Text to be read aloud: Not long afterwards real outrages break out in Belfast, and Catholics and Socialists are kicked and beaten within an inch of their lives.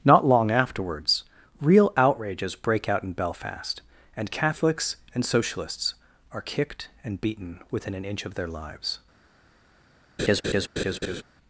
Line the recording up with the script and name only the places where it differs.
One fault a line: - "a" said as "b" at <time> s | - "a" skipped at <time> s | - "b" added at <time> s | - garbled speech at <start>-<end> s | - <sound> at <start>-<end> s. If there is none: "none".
- laugh at 10.2-11.2 s